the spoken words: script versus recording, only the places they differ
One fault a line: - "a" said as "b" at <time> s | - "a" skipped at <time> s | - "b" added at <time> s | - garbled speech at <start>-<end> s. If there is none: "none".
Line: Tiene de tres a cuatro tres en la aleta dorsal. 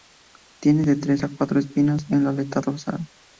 - "tres" said as "espinas" at 1.6 s